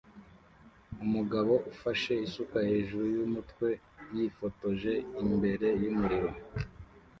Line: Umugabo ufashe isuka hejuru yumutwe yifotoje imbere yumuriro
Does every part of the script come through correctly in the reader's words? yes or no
yes